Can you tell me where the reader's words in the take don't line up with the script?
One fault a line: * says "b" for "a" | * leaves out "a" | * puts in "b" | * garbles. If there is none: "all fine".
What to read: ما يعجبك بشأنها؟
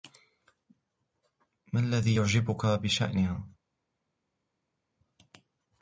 * puts in "الذي"